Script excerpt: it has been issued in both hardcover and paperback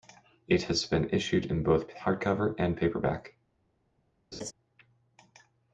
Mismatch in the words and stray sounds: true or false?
true